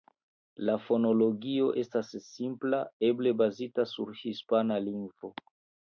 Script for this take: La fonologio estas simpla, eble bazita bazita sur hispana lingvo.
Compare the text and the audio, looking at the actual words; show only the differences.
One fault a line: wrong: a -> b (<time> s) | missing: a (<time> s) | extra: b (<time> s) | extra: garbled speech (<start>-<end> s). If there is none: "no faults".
missing: bazita (3.9 s)